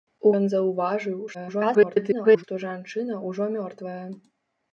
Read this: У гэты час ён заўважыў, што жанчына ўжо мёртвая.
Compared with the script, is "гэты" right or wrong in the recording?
wrong